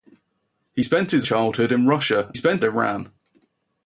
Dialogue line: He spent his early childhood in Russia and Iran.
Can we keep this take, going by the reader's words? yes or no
no